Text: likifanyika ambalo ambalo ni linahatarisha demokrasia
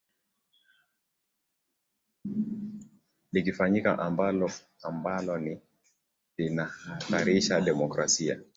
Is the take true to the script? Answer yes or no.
yes